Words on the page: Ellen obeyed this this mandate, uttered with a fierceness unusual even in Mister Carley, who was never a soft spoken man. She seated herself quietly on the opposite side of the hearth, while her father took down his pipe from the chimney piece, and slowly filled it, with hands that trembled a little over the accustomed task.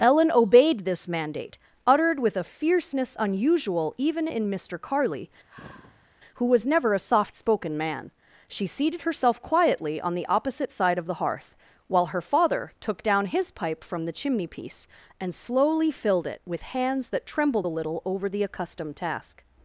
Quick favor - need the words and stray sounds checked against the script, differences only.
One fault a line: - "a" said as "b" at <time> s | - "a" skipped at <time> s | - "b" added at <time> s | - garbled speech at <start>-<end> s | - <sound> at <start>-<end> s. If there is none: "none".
- "this" skipped at 1.1 s
- sigh at 5.5-6.1 s